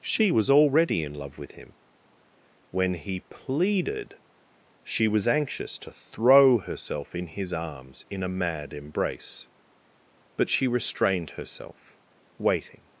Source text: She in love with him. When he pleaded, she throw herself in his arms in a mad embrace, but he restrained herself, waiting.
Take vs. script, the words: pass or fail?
fail